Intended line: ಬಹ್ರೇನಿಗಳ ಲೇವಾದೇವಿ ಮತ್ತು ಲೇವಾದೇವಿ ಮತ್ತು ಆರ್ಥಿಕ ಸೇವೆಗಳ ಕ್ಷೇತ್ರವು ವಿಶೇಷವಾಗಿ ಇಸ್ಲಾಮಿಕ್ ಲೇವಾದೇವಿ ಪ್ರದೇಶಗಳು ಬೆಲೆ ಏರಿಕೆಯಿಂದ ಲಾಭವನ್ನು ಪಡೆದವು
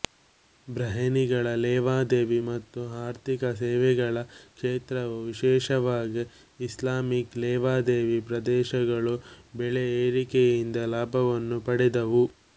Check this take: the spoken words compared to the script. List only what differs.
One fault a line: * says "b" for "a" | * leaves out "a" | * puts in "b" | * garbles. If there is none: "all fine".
* leaves out "ಲೇವಾದೇವಿ ಮತ್ತು"